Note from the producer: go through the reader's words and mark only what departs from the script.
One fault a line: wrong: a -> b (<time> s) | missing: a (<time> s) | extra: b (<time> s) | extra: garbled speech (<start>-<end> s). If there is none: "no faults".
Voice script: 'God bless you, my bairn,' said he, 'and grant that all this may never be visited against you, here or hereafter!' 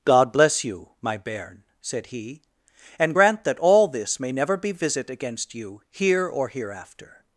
wrong: visited -> visit (4.7 s)